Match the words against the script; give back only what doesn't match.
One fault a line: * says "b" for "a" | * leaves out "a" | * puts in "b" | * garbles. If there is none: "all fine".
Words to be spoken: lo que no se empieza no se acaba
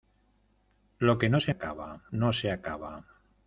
* says "acaba" for "empieza"